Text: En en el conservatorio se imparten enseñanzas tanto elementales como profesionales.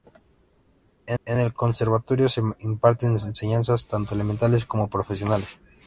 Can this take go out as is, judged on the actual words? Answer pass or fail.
pass